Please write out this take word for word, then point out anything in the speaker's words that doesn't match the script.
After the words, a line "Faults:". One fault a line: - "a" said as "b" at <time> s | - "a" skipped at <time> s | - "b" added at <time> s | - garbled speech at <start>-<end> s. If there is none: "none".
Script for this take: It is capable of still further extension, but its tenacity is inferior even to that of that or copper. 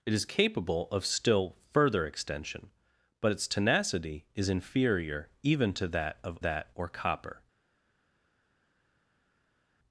It is capable of still further extension, but its tenacity is inferior even to that of that or copper.
Faults:
none